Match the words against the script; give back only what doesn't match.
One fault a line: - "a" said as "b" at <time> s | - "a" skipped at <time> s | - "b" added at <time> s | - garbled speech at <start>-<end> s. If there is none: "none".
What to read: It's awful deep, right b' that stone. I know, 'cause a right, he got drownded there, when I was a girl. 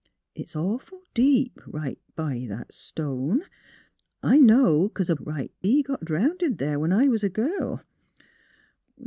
none